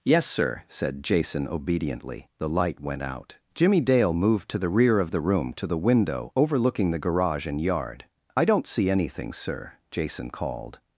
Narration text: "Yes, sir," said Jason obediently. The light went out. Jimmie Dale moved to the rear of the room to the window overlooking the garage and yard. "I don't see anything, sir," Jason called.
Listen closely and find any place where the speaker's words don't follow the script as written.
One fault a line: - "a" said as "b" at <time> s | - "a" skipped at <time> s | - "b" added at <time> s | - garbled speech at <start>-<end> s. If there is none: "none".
none